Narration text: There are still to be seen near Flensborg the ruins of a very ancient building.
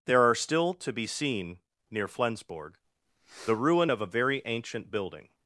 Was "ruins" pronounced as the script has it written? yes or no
no